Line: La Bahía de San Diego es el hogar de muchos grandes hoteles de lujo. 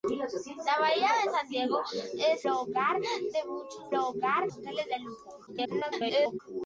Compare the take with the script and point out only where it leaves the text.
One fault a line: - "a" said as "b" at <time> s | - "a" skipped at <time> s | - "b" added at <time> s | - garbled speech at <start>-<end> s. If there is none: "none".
- "el" skipped at 2.5 s
- "grandes" said as "hogar" at 3.9 s
- garbled speech at 5.5-6.4 s